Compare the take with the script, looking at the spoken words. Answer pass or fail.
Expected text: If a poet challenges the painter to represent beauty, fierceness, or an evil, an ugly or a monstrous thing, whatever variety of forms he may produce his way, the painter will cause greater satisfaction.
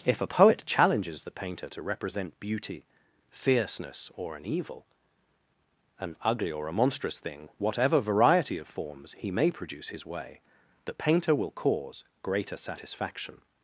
pass